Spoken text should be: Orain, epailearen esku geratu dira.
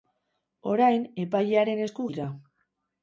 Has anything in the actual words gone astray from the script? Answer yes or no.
yes